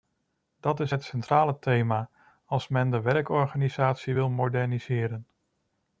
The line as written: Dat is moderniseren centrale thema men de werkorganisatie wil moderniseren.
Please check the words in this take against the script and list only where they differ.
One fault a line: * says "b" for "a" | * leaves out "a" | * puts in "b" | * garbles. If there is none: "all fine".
* says "het" for "moderniseren"
* puts in "als"